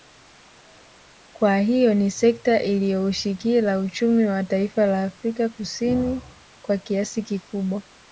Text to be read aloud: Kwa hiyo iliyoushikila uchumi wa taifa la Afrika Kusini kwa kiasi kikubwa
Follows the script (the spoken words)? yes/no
no